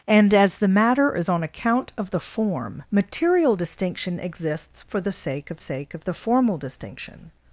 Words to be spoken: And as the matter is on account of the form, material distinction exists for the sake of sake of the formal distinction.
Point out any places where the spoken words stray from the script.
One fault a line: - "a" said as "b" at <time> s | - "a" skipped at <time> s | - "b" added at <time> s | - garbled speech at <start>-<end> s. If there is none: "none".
none